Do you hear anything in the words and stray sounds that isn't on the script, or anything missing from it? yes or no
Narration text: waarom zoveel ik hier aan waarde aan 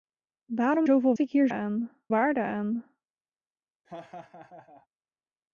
yes